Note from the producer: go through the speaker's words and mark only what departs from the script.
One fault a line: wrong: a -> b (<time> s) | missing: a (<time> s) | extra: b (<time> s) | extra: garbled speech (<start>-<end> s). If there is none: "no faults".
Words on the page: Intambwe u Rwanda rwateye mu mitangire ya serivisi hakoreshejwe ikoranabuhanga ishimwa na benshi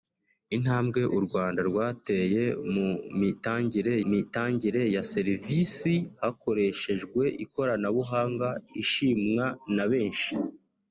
extra: mitangire (4.1 s)